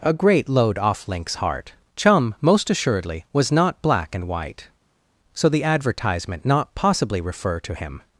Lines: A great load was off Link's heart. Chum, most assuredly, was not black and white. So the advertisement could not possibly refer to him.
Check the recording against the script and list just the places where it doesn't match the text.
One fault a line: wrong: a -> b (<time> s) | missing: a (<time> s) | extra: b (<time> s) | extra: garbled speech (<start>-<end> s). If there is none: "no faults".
missing: was (0.8 s)
missing: could (6.4 s)